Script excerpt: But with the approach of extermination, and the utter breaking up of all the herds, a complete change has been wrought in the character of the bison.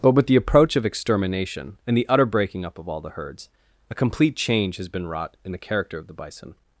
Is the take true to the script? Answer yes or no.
yes